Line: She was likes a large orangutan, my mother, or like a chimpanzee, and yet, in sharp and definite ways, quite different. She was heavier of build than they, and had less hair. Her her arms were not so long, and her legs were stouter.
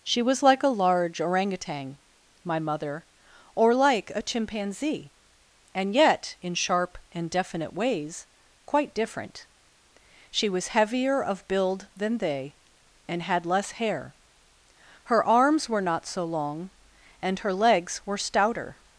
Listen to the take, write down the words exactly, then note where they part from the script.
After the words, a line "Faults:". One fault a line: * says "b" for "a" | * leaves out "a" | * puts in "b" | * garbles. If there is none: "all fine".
She was like a large orangutan, my mother, or like a chimpanzee, and yet, in sharp and definite ways, quite different. She was heavier of build than they, and had less hair. Her arms were not so long, and her legs were stouter.
Faults:
* says "like" for "likes"
* leaves out "her"